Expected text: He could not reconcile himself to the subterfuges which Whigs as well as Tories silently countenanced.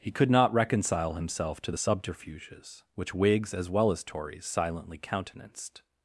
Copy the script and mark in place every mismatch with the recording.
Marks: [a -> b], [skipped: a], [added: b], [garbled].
He could not reconcile himself to the subterfuges which Whigs as well as Tories silently countenanced.